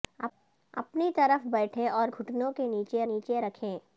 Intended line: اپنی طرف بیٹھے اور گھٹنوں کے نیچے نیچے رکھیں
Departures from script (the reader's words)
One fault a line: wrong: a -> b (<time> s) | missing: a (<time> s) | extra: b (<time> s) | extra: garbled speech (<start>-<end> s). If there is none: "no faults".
no faults